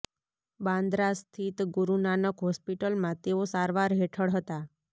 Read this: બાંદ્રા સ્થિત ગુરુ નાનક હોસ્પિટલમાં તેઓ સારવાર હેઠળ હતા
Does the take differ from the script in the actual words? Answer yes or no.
no